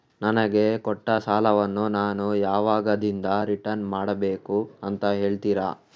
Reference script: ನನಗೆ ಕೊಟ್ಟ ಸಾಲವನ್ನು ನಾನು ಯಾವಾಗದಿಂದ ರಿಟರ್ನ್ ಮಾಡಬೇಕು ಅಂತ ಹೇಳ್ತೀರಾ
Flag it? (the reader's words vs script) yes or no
no